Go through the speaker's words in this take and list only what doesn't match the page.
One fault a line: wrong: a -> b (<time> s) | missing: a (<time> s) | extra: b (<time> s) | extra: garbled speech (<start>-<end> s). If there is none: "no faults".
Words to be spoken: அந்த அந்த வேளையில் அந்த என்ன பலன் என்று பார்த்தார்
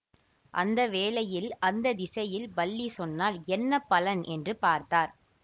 extra: வேளையில் (0.9 s)
wrong: வேளையில் அந்த -> திசையில் பல்லி சொன்னால் (1.9 s)